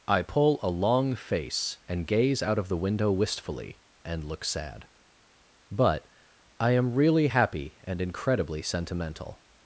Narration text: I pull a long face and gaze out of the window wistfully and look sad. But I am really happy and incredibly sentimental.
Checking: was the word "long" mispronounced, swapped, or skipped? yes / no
no